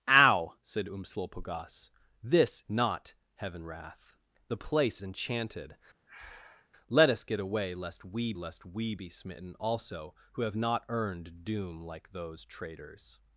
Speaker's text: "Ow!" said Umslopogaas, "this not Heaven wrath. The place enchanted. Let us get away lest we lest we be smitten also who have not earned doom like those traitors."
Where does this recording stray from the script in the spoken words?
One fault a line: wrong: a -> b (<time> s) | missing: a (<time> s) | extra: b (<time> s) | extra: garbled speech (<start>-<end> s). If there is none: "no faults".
no faults